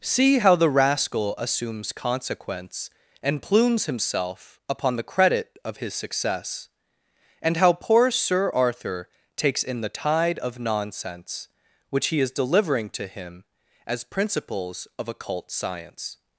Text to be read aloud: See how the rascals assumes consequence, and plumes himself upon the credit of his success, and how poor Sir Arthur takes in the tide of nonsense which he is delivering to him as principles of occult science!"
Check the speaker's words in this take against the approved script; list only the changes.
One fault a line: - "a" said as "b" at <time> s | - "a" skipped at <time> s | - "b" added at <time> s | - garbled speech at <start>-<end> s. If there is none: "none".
- "rascals" said as "rascal" at 0.7 s